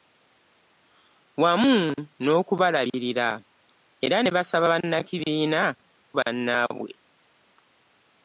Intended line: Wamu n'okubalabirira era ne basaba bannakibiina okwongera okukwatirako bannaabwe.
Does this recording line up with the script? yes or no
no